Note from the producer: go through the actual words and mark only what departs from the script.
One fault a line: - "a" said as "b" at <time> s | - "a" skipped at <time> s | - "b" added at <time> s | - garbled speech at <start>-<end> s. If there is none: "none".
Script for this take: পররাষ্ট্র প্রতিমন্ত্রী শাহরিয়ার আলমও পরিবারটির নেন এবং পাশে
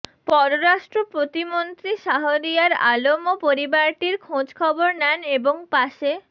- "খোঁজখবর" added at 4.2 s